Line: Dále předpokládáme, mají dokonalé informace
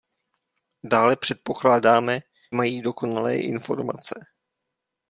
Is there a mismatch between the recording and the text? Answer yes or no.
no